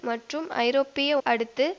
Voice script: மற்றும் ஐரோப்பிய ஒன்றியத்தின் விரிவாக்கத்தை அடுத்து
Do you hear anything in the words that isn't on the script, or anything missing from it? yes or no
yes